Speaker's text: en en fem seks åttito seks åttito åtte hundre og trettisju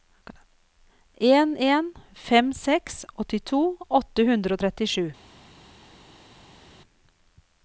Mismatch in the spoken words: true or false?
true